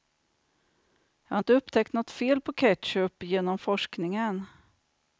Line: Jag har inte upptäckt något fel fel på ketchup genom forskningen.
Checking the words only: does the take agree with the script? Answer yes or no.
no